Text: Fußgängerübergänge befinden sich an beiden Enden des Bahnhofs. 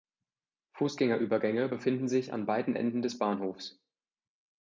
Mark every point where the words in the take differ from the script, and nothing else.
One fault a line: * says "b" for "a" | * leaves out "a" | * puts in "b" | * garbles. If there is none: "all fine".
all fine